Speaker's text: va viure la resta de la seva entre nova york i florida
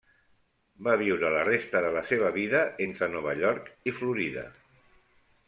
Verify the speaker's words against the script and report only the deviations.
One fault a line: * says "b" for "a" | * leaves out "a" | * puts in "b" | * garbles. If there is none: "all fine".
* puts in "vida"